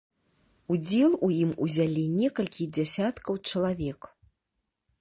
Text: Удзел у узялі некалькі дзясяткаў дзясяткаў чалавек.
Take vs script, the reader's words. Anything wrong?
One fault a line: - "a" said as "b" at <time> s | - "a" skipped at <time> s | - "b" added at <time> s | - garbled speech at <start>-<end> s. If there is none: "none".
- "ім" added at 1.4 s
- "дзясяткаў" skipped at 3.4 s